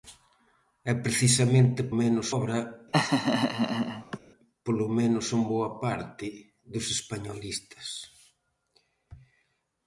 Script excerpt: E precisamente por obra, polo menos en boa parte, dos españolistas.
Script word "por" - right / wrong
wrong